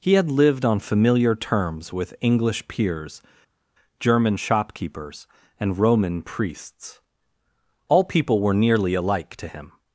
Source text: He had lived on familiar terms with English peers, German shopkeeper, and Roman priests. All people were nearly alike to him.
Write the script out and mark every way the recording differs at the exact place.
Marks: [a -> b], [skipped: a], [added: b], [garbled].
He had lived on familiar terms with English peers, German [shopkeeper, -> shopkeepers] and Roman priests. All people were nearly alike to him.